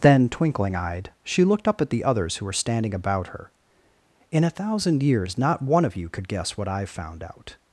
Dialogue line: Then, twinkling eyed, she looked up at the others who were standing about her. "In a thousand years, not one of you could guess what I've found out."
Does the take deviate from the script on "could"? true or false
false